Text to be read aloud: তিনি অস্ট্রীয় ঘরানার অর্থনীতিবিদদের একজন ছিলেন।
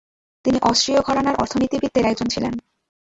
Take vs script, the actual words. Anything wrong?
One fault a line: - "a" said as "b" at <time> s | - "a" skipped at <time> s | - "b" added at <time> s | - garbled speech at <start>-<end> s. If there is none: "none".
none